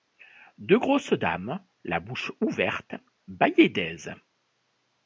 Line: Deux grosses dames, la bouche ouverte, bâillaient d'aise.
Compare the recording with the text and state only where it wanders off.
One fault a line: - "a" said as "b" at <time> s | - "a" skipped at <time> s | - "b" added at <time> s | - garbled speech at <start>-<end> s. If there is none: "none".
none